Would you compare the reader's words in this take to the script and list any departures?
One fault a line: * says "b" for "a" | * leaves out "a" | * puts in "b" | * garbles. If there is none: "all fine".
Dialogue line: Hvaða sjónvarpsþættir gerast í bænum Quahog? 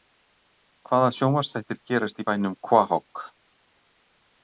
all fine